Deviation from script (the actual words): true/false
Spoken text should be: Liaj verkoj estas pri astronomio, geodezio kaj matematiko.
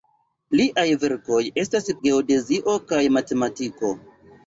true